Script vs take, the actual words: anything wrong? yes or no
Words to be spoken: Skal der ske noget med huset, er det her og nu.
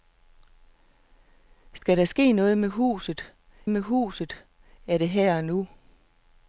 yes